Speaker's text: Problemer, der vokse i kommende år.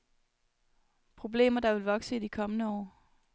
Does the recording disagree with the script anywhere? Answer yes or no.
yes